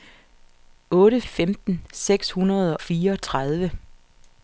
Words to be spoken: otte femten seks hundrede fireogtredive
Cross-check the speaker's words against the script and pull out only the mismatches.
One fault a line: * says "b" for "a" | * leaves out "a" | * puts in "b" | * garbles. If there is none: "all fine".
all fine